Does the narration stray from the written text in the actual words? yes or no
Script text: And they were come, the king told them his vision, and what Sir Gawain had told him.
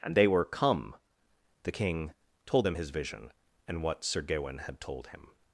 no